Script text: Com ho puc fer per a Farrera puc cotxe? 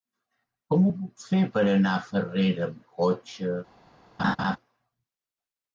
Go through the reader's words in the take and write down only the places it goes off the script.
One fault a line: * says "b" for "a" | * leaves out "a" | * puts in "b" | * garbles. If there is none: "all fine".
* puts in "anar"
* says "amb" for "puc"